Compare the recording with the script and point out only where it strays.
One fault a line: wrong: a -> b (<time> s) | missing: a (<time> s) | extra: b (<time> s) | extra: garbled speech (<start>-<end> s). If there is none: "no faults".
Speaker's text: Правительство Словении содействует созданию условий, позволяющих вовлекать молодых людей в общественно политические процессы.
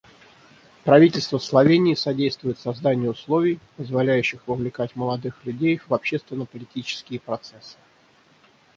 no faults